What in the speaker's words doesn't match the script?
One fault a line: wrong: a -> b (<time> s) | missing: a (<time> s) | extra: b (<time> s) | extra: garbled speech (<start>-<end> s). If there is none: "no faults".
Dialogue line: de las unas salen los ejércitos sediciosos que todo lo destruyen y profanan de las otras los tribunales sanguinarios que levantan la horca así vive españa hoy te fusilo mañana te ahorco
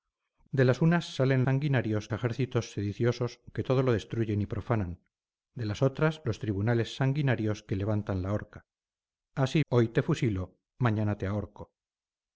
wrong: los -> sanguinarios (1.4 s)
missing: vive españa (9.6 s)